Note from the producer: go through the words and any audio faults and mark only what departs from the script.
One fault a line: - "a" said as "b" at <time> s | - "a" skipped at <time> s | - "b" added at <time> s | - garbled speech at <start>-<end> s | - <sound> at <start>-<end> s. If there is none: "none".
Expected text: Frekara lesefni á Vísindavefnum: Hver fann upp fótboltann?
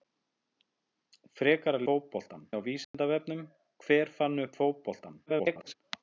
- "lesefni" said as "fótboltann" at 1.9 s
- dropout at 2.8-2.9 s
- garbled speech at 5.3-5.7 s